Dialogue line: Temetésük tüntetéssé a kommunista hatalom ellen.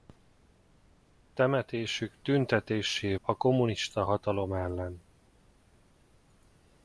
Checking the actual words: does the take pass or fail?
pass